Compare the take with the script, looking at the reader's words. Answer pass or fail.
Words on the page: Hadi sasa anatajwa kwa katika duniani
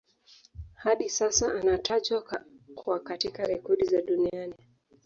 fail